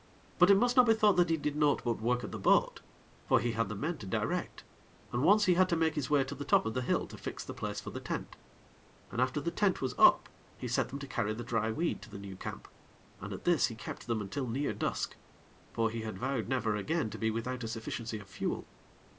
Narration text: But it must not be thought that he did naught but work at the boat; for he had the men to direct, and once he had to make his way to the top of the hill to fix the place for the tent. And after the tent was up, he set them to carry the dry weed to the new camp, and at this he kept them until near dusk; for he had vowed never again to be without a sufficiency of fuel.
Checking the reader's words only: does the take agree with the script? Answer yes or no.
yes